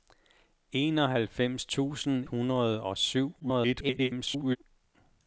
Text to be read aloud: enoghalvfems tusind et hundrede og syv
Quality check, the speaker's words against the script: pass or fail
fail